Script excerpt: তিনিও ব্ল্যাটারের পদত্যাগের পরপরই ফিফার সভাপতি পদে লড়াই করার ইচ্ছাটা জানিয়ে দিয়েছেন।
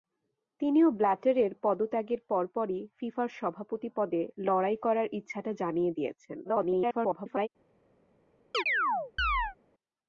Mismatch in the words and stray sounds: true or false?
true